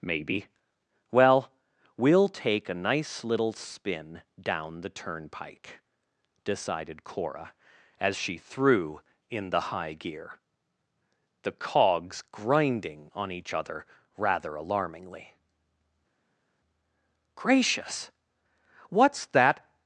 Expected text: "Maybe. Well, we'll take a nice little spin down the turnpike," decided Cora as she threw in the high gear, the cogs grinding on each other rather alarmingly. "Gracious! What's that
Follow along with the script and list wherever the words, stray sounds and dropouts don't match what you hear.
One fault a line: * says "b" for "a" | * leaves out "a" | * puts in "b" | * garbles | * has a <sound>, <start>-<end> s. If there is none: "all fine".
all fine